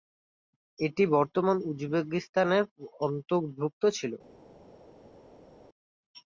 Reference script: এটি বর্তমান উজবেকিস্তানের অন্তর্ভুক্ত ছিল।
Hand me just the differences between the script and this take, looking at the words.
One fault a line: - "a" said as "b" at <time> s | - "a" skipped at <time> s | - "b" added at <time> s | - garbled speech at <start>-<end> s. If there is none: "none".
none